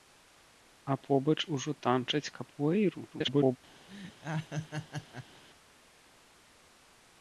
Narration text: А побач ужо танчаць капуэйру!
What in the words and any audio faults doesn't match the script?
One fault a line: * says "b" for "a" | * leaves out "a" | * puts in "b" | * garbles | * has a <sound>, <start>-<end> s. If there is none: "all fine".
* garbles
* has a laugh, 3.9-5.4 s